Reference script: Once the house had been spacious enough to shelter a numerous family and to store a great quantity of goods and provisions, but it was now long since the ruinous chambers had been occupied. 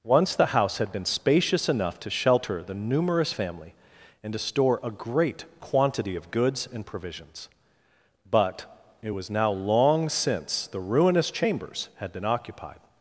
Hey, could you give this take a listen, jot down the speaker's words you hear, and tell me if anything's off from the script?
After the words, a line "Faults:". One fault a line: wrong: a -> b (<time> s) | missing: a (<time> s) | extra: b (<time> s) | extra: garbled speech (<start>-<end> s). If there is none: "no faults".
Once the house had been spacious enough to shelter the numerous family and to store a great quantity of goods and provisions, but it was now long since the ruinous chambers had been occupied.
Faults:
wrong: a -> the (2.6 s)